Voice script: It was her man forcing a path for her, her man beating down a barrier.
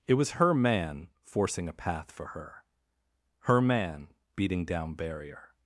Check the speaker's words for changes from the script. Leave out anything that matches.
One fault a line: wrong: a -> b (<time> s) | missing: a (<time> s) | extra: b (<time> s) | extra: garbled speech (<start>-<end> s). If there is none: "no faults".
missing: a (5.0 s)